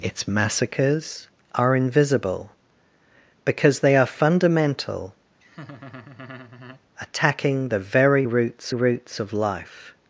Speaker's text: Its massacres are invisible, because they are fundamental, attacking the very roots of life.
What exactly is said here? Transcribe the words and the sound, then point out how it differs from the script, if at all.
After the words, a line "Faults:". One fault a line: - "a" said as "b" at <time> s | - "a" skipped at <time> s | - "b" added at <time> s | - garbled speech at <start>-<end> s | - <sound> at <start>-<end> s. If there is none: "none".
Its massacres are invisible, because they are fundamental, attacking the very roots roots of life.
Faults:
- laugh at 5.4-6.8 s
- "roots" added at 8.7 s